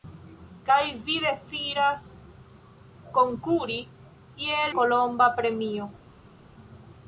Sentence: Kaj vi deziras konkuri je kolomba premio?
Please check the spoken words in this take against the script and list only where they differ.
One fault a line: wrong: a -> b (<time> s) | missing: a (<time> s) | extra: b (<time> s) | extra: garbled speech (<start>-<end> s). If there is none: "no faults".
no faults